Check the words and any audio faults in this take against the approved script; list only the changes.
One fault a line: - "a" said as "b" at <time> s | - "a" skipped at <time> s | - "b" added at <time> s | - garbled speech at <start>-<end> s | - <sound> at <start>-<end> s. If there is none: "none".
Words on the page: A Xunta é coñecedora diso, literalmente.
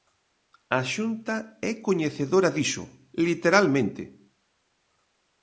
none